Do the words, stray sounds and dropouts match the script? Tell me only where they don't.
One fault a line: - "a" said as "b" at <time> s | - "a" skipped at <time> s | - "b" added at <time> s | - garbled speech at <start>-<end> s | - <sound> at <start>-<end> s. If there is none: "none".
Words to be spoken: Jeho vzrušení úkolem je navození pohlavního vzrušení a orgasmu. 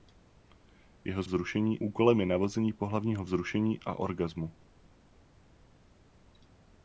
none